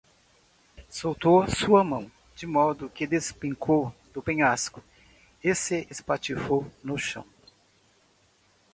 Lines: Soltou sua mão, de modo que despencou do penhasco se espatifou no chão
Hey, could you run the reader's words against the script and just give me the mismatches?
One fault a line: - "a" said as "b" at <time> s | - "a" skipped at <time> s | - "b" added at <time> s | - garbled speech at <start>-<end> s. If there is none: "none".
- "e" added at 5.4 s